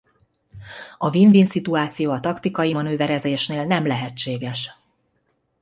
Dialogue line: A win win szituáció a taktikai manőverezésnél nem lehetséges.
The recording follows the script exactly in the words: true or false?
true